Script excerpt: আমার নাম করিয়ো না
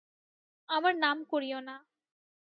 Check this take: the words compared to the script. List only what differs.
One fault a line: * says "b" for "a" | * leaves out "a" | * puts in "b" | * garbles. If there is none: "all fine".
all fine